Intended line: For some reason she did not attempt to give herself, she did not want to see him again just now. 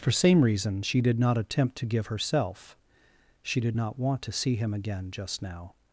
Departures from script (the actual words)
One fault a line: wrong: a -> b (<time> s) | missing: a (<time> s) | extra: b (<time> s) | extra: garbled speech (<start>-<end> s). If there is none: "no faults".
wrong: some -> same (0.1 s)